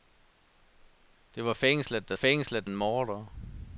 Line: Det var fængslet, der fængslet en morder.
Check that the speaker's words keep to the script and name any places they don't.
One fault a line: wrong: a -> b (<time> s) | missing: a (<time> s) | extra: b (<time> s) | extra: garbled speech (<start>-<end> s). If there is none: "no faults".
no faults